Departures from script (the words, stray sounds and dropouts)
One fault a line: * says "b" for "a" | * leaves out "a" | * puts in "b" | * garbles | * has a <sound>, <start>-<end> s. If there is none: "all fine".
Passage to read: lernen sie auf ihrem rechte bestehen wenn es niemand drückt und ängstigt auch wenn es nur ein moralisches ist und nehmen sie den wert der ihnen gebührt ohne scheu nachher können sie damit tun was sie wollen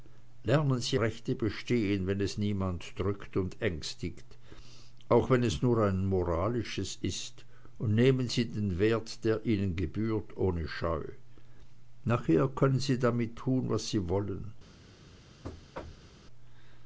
* leaves out "auf ihrem"
* has a thud, 15.4-16.1 s